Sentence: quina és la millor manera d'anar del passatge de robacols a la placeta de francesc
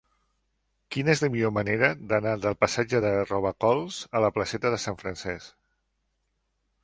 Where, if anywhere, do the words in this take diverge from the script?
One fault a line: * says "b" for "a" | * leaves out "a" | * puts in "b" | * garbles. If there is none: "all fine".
* puts in "sant"